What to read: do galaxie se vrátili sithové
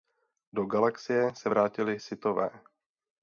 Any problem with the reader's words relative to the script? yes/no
no